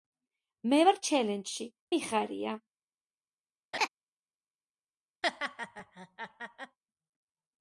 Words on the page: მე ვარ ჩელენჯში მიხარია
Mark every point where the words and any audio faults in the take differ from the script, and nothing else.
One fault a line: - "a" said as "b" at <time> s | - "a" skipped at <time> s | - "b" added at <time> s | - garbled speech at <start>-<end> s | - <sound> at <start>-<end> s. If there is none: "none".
- laugh at 3.7-3.9 s
- laugh at 5.2-6.8 s